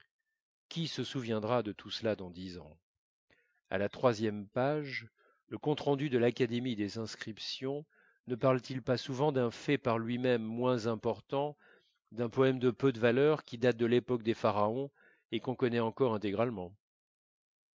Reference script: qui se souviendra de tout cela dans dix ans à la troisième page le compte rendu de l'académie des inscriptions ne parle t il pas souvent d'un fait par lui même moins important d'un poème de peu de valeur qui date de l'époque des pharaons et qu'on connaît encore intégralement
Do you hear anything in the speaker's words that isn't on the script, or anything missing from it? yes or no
no